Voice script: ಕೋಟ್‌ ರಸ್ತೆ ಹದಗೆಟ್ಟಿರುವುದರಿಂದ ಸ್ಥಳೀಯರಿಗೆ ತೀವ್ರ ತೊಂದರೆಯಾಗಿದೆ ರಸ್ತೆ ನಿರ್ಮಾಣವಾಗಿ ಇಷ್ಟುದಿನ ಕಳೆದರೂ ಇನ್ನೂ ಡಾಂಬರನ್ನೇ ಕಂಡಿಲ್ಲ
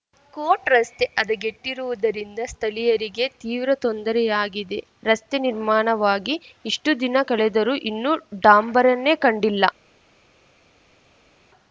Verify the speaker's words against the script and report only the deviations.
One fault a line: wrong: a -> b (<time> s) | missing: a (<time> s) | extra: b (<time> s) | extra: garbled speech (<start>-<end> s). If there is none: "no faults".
no faults